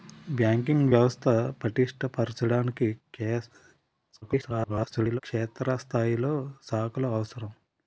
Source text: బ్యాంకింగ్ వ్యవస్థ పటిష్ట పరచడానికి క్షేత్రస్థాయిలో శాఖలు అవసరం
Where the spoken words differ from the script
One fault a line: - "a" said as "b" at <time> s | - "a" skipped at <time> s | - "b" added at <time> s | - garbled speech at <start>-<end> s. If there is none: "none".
- garbled speech at 4.2-5.2 s